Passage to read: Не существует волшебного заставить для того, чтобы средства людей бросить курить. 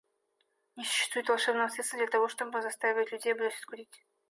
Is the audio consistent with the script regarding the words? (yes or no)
no